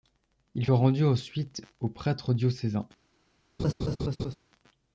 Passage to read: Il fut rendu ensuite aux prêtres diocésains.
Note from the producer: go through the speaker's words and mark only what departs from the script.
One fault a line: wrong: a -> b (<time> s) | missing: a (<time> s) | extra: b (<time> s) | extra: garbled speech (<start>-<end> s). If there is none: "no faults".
missing: fut (0.7 s)